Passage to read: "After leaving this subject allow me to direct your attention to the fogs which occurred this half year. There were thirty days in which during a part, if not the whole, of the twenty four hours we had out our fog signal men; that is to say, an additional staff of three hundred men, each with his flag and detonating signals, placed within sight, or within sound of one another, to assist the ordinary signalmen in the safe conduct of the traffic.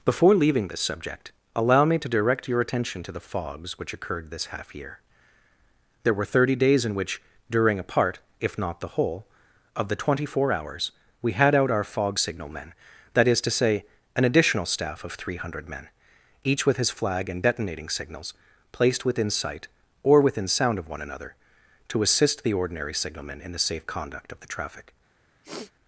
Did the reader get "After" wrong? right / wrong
wrong